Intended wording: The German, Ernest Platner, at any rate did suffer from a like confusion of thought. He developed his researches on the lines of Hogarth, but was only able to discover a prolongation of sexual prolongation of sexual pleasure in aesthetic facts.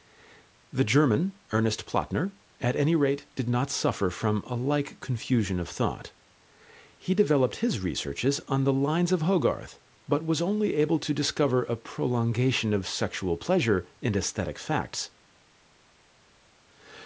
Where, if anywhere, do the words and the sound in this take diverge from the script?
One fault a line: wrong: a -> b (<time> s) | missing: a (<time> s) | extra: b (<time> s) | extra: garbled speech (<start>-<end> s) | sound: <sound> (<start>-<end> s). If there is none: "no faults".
extra: not (3.5 s)
missing: prolongation of sexual (13.4 s)